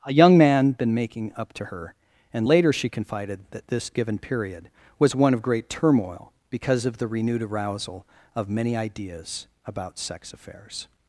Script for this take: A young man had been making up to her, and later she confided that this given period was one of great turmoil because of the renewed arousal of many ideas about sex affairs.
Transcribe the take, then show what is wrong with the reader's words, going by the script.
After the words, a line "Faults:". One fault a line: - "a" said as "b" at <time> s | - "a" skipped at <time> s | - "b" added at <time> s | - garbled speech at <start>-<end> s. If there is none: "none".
A young man been making up to her, and later she confided that this given period was one of great turmoil because of the renewed arousal of many ideas about sex affairs.
Faults:
- "had" skipped at 0.7 s